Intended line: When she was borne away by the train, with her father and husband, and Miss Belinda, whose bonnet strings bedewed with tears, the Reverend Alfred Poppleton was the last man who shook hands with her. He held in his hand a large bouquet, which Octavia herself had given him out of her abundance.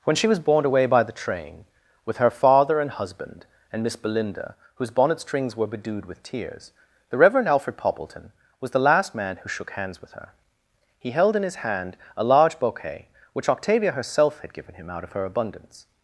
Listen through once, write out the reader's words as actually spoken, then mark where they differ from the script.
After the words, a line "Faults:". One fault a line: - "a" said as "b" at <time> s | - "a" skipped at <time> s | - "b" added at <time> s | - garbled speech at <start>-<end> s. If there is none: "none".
When she was borne away by the train, with her father and husband, and Miss Belinda, whose bonnet strings were bedewed with tears, the Reverend Alfred Poppleton was the last man who shook hands with her. He held in his hand a large bouquet, which Octavia herself had given him out of her abundance.
Faults:
- "were" added at 5.5 s